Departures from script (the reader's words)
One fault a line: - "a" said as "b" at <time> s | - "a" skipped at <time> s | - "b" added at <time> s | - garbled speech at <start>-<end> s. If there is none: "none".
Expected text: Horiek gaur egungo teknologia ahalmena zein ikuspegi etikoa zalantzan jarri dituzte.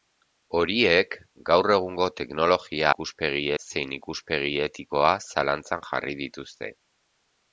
- "ahalmena" said as "ikuspegi" at 2.9 s